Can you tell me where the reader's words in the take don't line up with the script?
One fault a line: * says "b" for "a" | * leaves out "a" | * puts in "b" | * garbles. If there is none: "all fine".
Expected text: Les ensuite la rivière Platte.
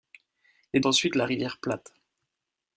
all fine